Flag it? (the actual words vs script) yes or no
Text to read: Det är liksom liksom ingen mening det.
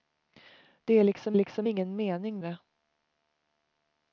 no